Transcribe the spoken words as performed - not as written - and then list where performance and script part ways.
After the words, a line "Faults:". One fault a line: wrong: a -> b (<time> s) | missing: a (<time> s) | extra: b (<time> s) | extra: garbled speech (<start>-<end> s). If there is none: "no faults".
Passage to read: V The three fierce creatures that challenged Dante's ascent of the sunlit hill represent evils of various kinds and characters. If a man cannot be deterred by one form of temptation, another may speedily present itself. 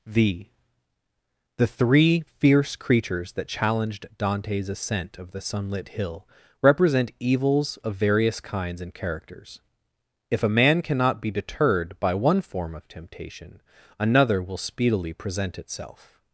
V The three fierce creatures that challenged Dante's ascent of the sunlit hill represent evils of various kinds and characters. If a man cannot be deterred by one form of temptation, another will speedily present itself.
Faults:
wrong: may -> will (14.4 s)